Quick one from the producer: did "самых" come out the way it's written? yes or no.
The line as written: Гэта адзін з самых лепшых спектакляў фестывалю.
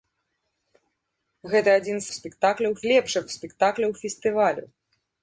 no